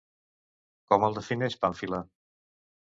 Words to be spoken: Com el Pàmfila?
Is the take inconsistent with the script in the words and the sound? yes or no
yes